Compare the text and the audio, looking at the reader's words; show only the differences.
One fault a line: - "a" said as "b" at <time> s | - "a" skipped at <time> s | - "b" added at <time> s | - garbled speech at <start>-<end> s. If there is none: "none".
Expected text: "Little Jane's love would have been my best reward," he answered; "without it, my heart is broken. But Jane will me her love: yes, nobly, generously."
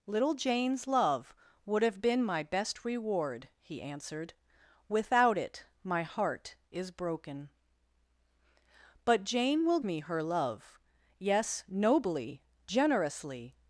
none